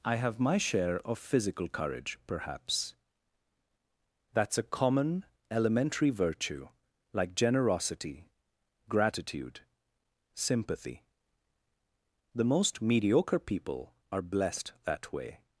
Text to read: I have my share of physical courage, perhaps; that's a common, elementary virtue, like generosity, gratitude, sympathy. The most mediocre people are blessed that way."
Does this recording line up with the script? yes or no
yes